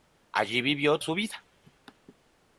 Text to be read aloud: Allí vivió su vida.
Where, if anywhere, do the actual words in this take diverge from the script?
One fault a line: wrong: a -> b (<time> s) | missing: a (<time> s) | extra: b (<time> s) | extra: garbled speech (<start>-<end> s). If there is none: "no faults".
no faults